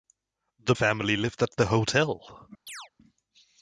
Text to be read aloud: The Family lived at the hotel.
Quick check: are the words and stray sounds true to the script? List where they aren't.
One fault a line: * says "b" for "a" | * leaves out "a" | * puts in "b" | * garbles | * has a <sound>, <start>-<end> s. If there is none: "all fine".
* has a chirp, 2.7-2.9 s